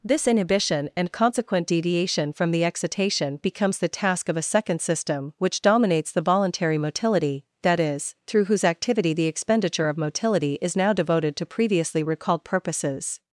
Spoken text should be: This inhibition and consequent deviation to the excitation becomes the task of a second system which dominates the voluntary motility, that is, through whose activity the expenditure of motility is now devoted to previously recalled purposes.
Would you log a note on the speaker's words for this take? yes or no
yes